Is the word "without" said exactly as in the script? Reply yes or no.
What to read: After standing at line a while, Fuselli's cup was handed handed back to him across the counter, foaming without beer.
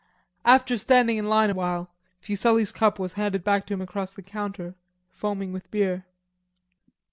no